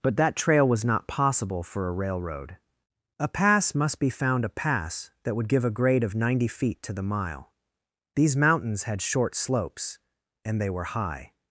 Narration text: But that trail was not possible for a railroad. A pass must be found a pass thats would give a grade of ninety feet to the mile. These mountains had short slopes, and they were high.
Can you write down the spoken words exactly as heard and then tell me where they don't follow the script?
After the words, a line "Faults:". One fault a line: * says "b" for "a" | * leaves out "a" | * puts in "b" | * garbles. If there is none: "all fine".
But that trail was not possible for a railroad. A pass must be found a pass that would give a grade of ninety feet to the mile. These mountains had short slopes, and they were high.
Faults:
* says "that" for "thats"